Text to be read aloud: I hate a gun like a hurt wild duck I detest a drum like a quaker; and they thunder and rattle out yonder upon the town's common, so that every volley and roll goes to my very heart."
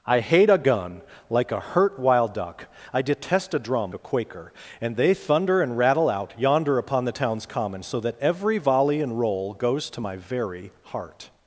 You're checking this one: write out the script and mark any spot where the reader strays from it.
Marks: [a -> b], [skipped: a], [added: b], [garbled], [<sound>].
I hate a gun like a hurt wild duck I detest a drum [skipped: like] a quaker; and they thunder and rattle out yonder upon the town's common, so that every volley and roll goes to my very heart."